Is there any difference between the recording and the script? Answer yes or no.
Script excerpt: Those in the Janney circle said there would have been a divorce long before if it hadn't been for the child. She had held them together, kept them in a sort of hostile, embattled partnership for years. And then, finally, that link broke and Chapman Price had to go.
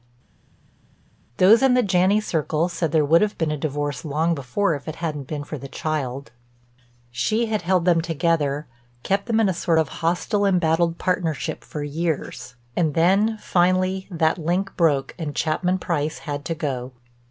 no